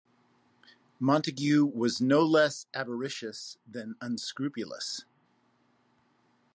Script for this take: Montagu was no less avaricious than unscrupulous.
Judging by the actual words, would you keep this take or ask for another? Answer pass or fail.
pass